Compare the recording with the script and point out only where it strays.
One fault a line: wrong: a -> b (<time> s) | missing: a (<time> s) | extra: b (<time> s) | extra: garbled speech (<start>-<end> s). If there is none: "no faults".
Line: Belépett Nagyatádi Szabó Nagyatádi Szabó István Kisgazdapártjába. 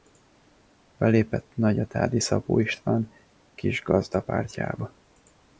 missing: Nagyatádi Szabó (2.6 s)